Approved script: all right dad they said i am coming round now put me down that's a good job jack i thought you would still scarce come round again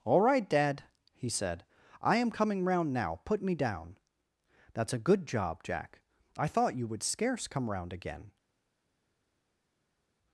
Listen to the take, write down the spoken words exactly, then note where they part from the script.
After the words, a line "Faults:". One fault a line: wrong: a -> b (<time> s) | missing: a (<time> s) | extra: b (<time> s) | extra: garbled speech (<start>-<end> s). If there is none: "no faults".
all right dad he said i am coming round now put me down that's a good job jack i thought you would scarce come round again
Faults:
wrong: they -> he (1.1 s)
missing: still (7.0 s)